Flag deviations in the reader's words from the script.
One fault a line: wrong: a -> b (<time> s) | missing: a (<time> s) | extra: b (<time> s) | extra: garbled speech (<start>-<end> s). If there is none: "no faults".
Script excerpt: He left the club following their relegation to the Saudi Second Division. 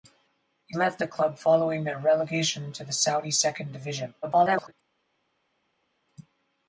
extra: garbled speech (4.2-4.7 s)